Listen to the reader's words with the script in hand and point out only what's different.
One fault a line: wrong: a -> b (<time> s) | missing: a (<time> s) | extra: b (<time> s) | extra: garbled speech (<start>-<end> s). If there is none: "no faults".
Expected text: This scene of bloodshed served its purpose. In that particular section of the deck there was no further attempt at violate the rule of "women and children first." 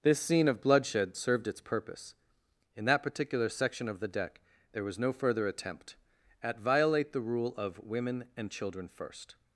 no faults